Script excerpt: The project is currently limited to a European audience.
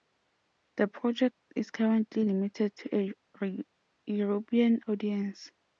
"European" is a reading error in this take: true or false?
false